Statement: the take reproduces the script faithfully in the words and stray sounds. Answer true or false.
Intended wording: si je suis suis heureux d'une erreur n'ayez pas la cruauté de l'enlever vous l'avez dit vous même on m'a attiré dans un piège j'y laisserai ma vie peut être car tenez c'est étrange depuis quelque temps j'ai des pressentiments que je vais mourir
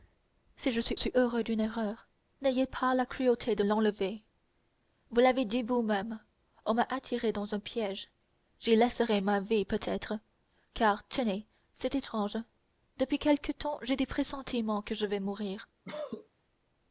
false